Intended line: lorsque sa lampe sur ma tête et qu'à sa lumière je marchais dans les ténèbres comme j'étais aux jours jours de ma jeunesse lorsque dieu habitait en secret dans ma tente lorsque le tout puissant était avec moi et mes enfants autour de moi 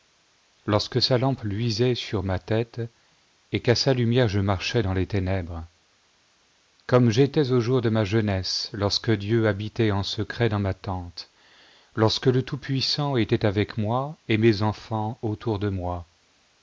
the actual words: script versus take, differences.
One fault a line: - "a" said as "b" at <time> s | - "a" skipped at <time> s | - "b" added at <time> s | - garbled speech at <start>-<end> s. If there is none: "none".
- "luisait" added at 1.4 s
- "jours" skipped at 7.8 s